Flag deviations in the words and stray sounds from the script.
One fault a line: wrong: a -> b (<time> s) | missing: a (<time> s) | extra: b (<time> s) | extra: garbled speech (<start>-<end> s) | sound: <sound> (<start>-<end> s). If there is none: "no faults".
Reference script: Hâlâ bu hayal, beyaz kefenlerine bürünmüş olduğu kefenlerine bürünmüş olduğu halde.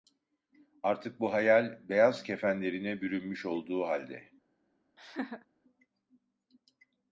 wrong: Hâlâ -> Artık (0.8 s)
missing: kefenlerine bürünmüş olduğu (3.8 s)
sound: laugh (5.0-5.5 s)